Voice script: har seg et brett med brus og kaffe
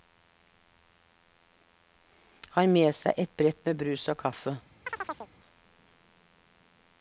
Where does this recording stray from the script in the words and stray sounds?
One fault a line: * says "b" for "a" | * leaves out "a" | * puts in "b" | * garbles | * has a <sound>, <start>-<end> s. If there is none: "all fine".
* puts in "med"
* has a chirp, 4.9-5.3 s